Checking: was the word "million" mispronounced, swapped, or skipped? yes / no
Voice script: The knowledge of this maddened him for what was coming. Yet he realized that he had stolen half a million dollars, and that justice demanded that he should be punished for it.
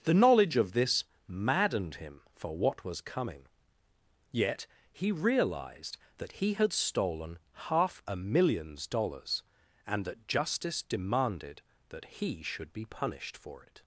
yes